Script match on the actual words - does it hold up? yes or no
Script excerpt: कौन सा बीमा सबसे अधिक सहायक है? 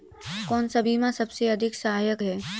yes